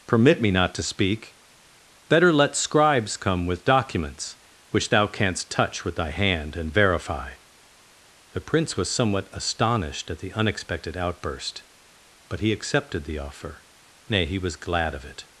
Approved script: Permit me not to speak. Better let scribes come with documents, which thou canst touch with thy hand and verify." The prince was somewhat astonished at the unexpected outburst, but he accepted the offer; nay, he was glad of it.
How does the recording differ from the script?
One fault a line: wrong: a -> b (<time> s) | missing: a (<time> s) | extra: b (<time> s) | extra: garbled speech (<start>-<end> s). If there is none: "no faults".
no faults